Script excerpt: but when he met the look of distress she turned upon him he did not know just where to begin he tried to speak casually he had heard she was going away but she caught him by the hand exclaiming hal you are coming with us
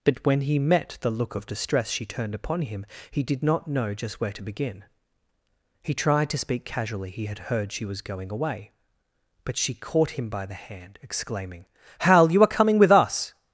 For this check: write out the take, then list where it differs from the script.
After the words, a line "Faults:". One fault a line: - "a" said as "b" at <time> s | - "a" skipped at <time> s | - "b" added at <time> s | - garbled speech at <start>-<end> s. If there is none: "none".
but when he met the look of distress she turned upon him he did not know just where to begin he tried to speak casually he had heard she was going away but she caught him by the hand exclaiming hal you are coming with us
Faults:
none